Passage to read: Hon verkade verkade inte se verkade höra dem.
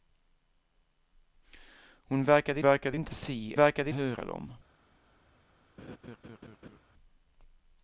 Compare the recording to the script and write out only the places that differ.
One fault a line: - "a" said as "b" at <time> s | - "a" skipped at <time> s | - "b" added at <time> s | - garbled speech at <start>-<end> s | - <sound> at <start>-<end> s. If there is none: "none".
- laugh at 5.8-6.8 s